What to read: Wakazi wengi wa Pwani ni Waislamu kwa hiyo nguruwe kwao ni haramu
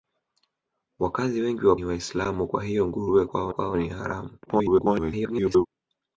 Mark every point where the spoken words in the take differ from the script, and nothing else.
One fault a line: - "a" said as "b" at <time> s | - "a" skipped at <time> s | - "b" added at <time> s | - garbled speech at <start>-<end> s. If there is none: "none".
- "Pwani" skipped at 1.8 s
- "kwao" added at 3.5 s
- garbled speech at 4.5-5.7 s